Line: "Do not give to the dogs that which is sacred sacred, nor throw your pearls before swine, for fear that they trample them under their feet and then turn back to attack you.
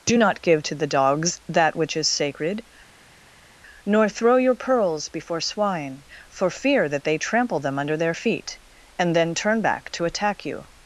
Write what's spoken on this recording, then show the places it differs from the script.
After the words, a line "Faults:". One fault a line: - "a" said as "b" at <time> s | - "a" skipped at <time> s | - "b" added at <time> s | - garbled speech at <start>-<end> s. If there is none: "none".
"Do not give to the dogs that which is sacred, nor throw your pearls before swine, for fear that they trample them under their feet and then turn back to attack you.
Faults:
- "sacred" skipped at 2.6 s